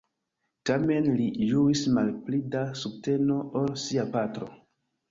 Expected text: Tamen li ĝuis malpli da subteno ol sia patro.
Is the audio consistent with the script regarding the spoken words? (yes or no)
yes